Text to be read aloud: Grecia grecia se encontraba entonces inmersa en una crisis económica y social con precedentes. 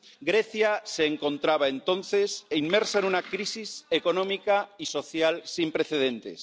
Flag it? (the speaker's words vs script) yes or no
yes